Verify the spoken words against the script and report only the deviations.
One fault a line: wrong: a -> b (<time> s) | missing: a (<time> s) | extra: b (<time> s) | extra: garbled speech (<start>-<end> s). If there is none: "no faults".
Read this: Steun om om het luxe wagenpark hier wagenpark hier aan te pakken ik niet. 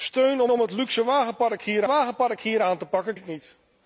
no faults